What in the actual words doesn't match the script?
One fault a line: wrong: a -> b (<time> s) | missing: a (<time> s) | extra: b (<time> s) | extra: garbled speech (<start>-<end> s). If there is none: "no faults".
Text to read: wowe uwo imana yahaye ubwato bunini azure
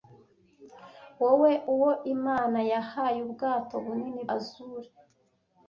no faults